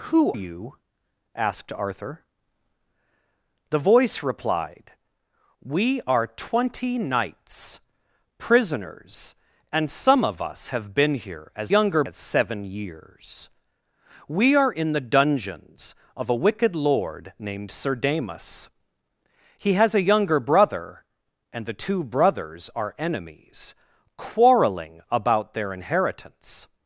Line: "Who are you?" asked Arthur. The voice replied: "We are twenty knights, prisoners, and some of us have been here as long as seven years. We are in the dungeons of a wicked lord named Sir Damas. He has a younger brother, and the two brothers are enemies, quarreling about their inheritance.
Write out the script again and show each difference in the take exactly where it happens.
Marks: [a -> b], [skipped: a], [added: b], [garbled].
"Who [skipped: are] you?" asked Arthur. The voice replied: "We are twenty knights, prisoners, and some of us have been here as [long -> younger] as seven years. We are in the dungeons of a wicked lord named Sir Damas. He has a younger brother, and the two brothers are enemies, quarreling about their inheritance.